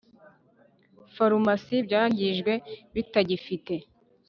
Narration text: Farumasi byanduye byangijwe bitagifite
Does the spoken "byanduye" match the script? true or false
false